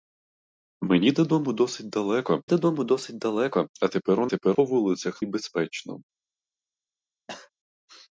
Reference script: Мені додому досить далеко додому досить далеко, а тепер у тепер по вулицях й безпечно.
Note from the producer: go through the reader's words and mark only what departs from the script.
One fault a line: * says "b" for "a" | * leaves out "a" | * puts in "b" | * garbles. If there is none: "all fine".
all fine